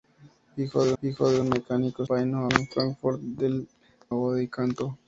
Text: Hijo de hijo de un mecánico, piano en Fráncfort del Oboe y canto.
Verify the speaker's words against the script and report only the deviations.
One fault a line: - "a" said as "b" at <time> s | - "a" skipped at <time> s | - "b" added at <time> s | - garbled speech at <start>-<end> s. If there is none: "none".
none